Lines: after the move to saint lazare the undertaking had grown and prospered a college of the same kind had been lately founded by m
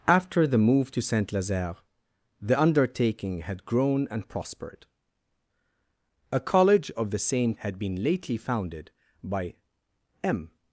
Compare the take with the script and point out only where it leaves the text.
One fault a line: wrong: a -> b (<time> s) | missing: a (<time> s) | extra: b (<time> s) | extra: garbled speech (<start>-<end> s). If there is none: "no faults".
missing: kind (7.5 s)